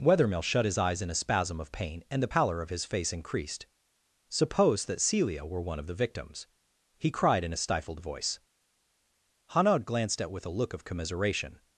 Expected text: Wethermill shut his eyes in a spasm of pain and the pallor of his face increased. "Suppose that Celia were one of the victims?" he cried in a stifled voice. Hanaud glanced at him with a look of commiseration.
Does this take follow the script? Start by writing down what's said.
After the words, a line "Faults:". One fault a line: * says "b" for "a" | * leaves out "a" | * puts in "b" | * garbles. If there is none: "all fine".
Wethermill shut his eyes in a spasm of pain and the pallor of his face increased. "Suppose that Celia were one of the victims?" he cried in a stifled voice. Hanaud glanced at with a look of commiseration.
Faults:
* leaves out "him"